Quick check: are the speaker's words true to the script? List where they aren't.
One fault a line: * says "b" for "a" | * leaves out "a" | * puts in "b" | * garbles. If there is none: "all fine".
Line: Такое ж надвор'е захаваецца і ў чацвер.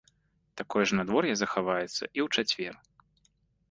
all fine